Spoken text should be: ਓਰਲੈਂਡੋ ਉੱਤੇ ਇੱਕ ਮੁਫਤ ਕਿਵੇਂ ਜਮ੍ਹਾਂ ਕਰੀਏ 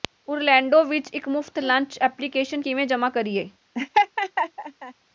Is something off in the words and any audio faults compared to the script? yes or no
yes